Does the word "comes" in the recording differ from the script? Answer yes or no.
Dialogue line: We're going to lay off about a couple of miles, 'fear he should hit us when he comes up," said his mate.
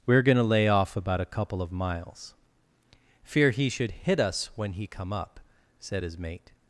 yes